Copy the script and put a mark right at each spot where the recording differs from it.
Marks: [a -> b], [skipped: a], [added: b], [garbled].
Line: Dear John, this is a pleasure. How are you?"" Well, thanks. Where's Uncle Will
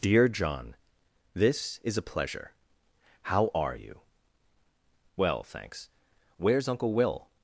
Dear John, this is a pleasure. How are you?"" Well, thanks. Where's Uncle Will